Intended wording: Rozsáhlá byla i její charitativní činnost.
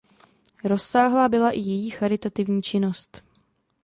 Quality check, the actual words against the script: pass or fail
pass